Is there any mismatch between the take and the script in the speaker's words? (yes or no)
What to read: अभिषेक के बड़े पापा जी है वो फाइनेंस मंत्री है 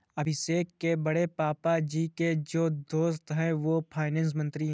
yes